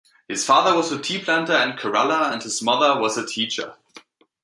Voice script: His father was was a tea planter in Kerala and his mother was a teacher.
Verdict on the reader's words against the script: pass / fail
fail